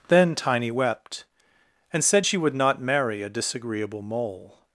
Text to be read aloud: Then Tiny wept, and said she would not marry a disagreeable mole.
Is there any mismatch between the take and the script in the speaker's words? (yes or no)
no